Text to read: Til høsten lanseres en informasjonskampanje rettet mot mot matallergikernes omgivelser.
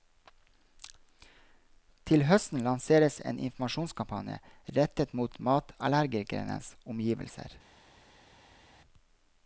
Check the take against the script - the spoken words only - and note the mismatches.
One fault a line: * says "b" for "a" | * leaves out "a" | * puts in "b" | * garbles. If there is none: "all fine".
* leaves out "mot"